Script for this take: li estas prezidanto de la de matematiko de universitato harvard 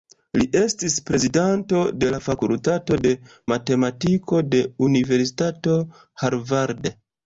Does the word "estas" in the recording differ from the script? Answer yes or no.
yes